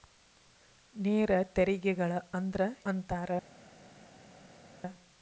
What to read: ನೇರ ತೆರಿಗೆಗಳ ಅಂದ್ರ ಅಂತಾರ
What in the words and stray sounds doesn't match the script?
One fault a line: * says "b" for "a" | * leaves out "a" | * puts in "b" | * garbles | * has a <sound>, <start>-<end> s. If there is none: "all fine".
all fine